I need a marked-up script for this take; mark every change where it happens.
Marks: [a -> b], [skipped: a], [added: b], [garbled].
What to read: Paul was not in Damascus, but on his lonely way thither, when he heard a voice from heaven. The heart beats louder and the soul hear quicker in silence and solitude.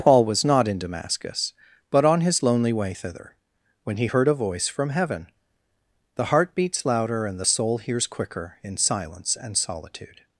Paul was not in Damascus, but on his lonely way thither, when he heard a voice from heaven. The heart beats louder and the soul [hear -> hears] quicker in silence and solitude.